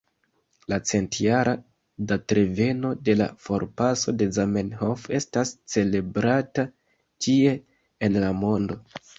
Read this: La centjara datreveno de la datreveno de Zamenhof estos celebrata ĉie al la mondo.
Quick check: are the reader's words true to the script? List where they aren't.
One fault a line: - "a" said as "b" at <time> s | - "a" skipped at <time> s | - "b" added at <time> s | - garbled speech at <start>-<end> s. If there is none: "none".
- "datreveno" said as "forpaso" at 3.5 s
- "estos" said as "estas" at 5.2 s
- "al" said as "en" at 8.1 s